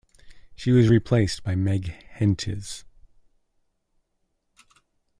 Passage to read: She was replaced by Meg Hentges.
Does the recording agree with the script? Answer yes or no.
yes